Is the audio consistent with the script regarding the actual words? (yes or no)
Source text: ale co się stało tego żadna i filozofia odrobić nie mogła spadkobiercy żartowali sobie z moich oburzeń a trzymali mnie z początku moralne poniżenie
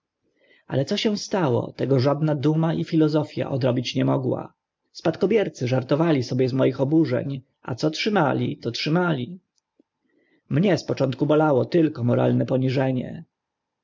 no